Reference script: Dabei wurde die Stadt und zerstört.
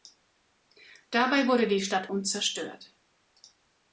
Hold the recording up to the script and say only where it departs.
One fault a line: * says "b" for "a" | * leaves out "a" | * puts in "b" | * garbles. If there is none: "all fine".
all fine